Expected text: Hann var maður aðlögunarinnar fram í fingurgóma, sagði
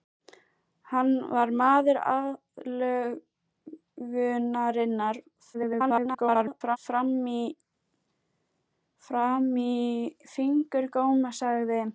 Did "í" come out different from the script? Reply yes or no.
no